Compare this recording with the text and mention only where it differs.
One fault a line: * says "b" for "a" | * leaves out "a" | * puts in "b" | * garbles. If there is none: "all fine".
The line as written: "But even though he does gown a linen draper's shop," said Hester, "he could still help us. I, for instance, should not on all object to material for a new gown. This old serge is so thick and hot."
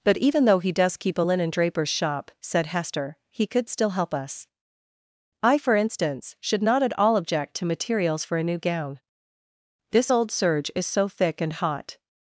* says "keep" for "gown"
* says "at" for "on"
* says "materials" for "material"